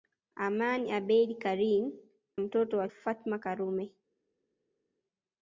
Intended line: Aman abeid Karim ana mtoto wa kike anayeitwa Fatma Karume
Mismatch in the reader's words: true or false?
true